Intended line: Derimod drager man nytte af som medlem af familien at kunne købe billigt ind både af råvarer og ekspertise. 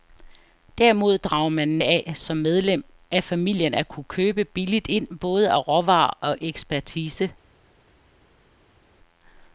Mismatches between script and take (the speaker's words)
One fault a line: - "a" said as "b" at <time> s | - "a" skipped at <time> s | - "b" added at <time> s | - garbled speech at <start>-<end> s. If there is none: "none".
- "nytte" skipped at 1.8 s